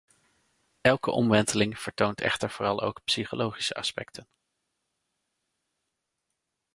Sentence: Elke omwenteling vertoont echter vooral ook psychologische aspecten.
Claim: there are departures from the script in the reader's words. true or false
false